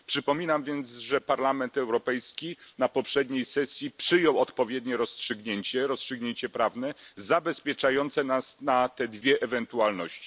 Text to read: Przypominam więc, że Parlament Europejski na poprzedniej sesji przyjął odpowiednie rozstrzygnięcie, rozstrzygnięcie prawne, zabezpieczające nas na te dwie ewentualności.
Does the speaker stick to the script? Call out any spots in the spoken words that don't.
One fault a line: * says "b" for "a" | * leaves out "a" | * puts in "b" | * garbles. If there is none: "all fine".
all fine